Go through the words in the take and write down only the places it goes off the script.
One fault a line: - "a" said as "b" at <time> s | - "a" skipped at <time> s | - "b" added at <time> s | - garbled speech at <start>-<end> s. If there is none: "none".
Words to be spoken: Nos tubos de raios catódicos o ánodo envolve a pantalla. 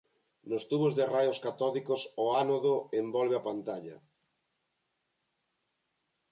none